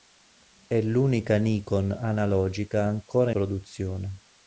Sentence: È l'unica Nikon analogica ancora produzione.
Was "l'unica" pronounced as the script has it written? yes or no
yes